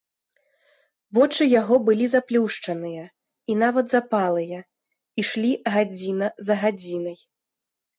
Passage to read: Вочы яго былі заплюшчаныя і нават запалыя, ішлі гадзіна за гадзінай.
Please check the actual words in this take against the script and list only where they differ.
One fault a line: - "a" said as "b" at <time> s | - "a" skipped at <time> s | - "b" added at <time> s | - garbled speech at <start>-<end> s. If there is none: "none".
none